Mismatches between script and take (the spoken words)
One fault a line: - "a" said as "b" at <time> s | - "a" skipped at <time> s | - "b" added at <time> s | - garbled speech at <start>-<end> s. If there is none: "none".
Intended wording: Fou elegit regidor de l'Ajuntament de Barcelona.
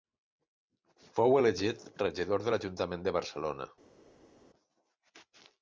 none